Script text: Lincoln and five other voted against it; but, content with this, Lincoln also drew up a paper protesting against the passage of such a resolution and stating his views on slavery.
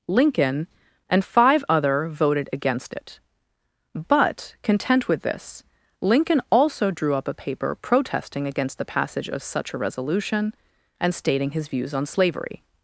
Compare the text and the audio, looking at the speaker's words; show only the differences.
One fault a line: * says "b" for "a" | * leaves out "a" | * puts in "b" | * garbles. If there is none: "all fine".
all fine